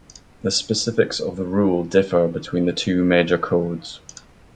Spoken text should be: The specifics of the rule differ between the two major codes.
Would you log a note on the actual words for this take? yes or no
no